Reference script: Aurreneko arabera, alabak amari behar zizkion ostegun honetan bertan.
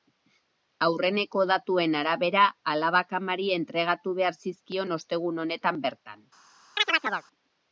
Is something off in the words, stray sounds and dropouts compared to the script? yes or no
yes